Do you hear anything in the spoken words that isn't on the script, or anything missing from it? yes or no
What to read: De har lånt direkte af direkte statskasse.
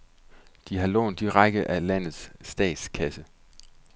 yes